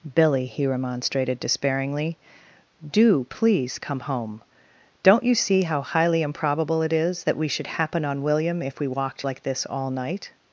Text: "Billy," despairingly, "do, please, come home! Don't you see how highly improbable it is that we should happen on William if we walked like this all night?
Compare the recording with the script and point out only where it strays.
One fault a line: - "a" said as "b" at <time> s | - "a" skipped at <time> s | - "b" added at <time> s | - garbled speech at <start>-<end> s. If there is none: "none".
- "he remonstrated" added at 0.5 s